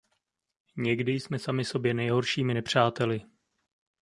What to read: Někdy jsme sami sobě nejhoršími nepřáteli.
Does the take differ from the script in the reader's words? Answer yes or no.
no